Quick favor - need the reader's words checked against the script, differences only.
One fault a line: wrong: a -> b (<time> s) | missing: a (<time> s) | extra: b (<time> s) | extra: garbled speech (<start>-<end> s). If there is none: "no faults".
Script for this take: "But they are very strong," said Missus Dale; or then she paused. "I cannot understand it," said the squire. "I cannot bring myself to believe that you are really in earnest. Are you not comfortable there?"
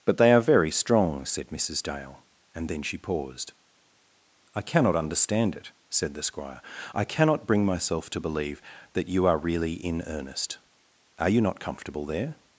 wrong: or -> and (2.5 s)